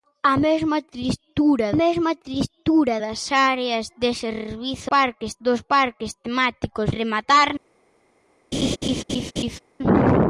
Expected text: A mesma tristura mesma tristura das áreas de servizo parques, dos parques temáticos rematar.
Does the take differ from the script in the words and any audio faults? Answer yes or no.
yes